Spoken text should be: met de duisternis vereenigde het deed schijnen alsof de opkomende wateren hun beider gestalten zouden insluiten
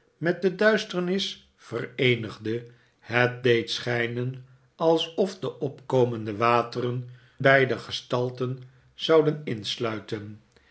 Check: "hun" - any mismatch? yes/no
yes